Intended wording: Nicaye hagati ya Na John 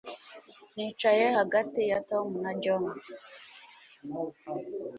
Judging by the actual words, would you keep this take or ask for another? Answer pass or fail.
fail